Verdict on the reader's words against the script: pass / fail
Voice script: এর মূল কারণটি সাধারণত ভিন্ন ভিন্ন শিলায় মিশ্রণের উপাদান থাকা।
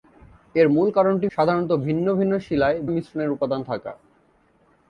pass